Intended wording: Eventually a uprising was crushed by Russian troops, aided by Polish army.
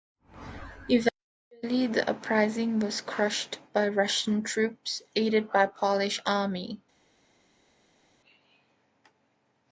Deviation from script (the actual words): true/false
true